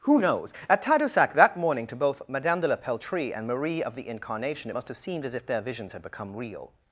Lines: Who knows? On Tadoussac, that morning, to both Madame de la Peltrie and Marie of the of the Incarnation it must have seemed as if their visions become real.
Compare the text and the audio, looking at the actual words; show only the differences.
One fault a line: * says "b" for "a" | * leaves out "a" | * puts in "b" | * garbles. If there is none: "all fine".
* says "At" for "On"
* leaves out "of the"
* puts in "had"